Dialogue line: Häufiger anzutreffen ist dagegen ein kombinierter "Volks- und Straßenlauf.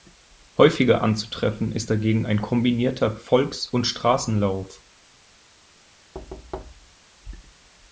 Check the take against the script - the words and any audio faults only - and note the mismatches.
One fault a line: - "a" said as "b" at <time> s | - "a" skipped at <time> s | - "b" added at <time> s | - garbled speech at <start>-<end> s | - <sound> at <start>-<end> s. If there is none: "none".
- thud at 6.1-7.0 s